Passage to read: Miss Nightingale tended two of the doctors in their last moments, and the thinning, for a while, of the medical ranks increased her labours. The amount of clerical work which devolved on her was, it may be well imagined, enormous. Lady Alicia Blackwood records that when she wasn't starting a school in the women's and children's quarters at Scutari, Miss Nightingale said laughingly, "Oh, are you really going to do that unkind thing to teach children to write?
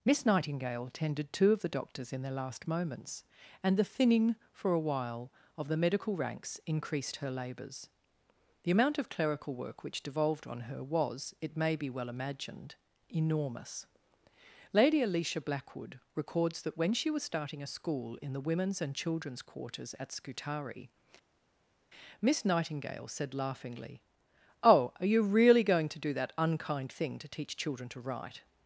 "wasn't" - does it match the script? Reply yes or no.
no